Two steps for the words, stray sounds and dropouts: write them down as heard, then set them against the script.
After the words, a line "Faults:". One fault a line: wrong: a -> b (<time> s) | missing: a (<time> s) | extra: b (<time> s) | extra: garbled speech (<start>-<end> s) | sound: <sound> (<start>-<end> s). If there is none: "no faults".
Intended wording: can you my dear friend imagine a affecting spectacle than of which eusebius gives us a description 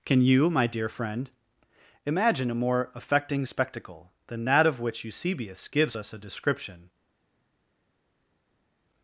can you my dear friend imagine a more affecting spectacle than that of which eusebius gives us a description
Faults:
extra: more (2.5 s)
extra: that (4.4 s)